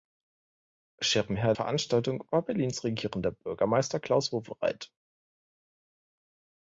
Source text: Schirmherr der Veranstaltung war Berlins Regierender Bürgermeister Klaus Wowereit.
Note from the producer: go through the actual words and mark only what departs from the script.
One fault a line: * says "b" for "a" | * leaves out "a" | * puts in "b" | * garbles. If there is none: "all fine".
* leaves out "der"